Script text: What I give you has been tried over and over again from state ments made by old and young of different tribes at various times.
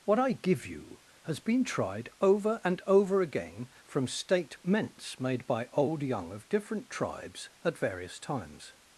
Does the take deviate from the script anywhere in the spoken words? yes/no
yes